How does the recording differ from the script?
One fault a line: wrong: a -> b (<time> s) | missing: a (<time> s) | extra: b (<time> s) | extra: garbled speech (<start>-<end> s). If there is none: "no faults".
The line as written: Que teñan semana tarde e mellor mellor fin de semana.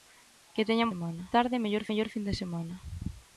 no faults